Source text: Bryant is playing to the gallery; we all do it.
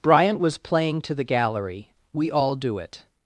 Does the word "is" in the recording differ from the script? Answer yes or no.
yes